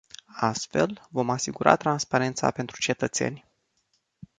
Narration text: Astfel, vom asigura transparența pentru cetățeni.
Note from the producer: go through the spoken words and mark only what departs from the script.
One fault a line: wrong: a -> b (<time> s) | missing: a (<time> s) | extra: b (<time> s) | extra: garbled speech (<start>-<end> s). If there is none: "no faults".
no faults